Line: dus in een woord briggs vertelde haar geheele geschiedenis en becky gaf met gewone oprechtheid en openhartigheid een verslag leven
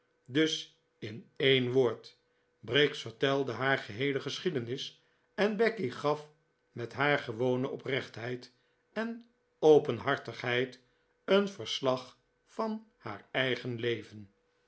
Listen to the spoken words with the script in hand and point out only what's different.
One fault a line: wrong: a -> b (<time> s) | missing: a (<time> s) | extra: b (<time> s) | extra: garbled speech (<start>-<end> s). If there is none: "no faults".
extra: haar (6.9 s)
extra: van haar eigen (12.4 s)